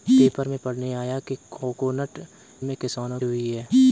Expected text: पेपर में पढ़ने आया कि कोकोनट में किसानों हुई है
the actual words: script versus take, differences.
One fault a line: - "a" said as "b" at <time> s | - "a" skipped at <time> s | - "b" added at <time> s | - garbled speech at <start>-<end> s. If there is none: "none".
none